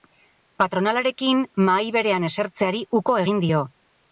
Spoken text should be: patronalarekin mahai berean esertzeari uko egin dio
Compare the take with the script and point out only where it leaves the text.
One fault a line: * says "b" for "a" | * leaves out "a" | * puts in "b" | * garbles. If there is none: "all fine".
all fine